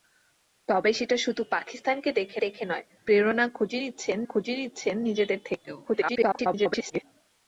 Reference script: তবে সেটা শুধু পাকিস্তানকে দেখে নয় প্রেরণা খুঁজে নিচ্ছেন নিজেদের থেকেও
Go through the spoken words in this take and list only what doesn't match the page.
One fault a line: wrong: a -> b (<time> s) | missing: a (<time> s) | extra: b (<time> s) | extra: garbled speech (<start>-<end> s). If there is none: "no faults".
extra: দেখে (2.4 s)
extra: খুঁজে নিচ্ছেন (4.2 s)
extra: garbled speech (5.8-7.0 s)